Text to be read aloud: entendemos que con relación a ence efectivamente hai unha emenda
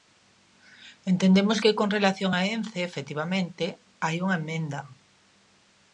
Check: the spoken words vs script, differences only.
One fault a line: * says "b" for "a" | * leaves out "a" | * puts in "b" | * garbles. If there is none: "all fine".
all fine